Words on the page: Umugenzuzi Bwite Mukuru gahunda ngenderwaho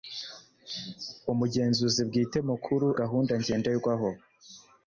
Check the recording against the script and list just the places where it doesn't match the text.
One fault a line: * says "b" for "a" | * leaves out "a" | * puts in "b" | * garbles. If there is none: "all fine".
all fine